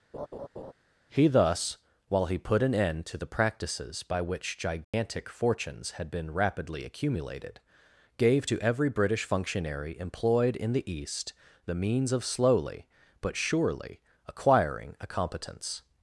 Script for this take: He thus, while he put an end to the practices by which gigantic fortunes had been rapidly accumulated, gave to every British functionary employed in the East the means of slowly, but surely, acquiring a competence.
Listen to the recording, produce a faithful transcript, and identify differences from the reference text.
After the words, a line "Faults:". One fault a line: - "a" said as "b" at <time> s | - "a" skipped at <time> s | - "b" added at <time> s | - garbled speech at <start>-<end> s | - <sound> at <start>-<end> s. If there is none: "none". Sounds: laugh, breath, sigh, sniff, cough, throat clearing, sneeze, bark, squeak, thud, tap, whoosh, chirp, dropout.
He thus, while he put an end to the practices by which gigantic fortunes had been rapidly accumulated, gave to every British functionary employed in the East the means of slowly, but surely, acquiring a competence.
Faults:
- laugh at 0.1-0.7 s
- dropout at 4.8-4.9 s